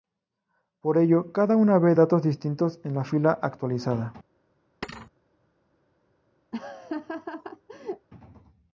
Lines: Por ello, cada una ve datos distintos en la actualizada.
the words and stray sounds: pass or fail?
fail